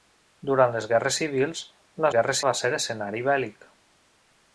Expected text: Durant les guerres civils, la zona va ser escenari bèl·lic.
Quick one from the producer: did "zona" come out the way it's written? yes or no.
no